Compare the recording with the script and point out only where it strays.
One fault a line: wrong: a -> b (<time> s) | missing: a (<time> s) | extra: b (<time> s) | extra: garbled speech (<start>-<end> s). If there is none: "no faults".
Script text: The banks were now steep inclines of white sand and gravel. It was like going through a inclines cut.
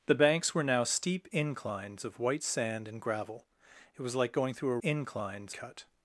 no faults